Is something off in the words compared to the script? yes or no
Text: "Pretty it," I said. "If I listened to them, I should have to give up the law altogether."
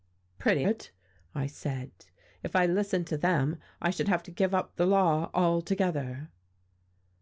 no